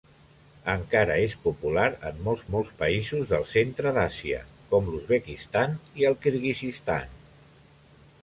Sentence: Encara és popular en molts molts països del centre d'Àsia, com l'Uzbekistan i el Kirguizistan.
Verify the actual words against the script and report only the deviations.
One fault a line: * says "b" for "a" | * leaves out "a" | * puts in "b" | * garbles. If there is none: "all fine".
all fine